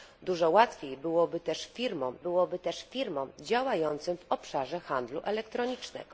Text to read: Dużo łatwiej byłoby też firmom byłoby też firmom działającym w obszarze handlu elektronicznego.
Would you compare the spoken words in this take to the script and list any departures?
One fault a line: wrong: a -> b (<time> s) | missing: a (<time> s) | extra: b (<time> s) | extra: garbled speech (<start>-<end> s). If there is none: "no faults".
no faults